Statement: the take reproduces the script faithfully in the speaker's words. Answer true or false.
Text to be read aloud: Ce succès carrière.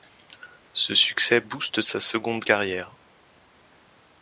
false